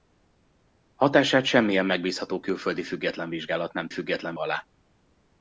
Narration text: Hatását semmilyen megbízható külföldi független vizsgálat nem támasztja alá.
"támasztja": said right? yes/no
no